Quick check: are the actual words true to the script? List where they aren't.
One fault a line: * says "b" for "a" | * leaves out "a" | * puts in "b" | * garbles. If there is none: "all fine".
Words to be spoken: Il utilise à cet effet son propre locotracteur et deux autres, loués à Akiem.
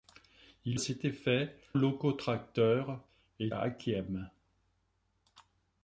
* leaves out "utilise"
* leaves out "son propre"
* leaves out "deux autres loués"